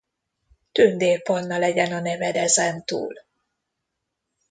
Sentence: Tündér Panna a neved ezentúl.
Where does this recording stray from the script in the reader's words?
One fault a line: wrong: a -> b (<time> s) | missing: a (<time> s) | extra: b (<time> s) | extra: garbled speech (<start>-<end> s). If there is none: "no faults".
extra: legyen (1.6 s)